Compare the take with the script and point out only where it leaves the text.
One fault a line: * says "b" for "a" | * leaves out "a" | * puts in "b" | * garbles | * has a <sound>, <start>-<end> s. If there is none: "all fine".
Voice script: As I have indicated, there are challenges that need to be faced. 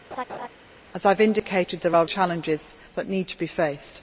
* has a laugh, 0.1-0.5 s